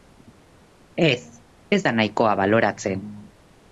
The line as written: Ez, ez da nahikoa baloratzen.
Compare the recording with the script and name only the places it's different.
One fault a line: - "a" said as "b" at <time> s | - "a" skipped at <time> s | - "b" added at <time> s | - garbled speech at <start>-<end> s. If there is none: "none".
none